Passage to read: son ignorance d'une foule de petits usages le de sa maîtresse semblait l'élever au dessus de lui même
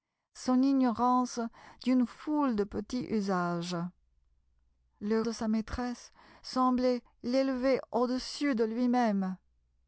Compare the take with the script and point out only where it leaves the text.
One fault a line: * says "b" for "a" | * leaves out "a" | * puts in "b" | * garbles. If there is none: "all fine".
all fine